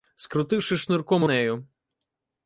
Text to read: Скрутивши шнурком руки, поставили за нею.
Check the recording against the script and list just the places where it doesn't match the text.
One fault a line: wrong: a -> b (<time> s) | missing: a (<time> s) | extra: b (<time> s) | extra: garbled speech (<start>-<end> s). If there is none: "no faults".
missing: руки поставили за (1.2 s)